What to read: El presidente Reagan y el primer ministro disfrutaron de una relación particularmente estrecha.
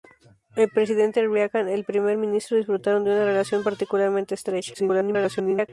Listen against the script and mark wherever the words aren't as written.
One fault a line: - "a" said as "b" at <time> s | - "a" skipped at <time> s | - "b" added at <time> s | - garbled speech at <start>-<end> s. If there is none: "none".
- garbled speech at 4.7-5.7 s